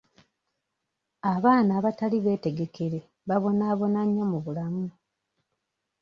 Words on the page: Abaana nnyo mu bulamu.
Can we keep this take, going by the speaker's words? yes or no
no